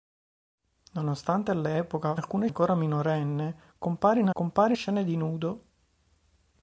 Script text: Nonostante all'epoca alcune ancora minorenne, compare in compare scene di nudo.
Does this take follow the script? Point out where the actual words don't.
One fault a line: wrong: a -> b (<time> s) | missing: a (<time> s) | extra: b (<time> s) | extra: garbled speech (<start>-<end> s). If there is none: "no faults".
no faults